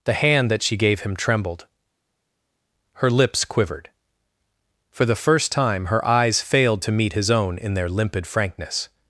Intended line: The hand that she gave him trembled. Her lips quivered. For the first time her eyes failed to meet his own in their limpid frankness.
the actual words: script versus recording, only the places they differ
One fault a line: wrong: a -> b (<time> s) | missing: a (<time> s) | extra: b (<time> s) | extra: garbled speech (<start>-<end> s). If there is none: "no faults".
no faults